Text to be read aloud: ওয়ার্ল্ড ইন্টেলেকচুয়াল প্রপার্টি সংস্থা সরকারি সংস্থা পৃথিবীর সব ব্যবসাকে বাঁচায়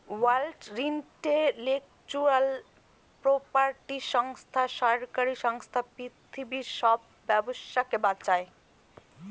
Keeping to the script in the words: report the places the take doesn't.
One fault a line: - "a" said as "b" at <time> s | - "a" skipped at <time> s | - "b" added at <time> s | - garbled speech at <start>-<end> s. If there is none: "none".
none